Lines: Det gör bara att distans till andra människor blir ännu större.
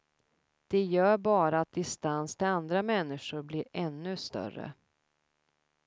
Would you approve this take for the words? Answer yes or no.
yes